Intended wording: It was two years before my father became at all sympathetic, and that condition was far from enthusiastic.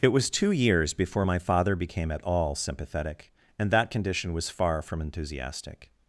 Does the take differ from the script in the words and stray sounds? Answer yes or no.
no